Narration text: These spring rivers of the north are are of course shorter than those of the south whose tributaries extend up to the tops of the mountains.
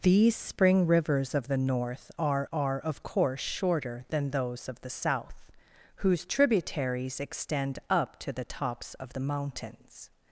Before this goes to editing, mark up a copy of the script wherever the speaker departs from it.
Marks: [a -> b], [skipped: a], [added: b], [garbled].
These spring rivers of the north are are of course shorter than those of the south whose tributaries extend up to the tops of the mountains.